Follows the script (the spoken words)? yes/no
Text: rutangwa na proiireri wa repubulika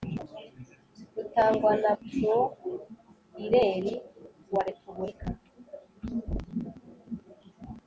yes